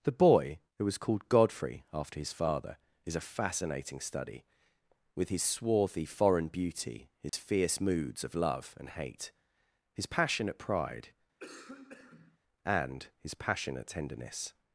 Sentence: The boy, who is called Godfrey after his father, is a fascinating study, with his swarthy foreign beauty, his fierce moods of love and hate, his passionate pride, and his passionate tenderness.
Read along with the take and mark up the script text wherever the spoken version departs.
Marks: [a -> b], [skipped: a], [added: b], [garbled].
The boy, who [is -> was] called Godfrey after his father, is a fascinating study, with his swarthy foreign beauty, his fierce moods of love and hate, his passionate pride, and his passionate tenderness.